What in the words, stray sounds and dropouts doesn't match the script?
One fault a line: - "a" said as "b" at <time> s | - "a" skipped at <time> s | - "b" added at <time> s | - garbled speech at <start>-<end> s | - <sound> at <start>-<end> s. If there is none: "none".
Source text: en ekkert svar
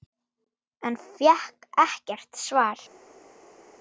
- "fékk" added at 1.2 s